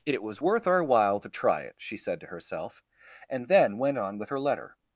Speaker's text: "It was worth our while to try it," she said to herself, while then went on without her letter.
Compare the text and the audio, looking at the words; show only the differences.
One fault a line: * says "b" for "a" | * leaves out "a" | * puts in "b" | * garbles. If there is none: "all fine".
* says "and" for "while"
* says "with" for "without"